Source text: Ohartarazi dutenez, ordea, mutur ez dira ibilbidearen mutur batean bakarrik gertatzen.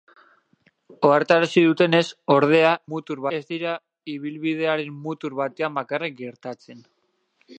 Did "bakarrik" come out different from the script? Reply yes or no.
no